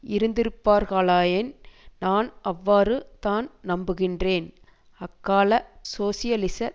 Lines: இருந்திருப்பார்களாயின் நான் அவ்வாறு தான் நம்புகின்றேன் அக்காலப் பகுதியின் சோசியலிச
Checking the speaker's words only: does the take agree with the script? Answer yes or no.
no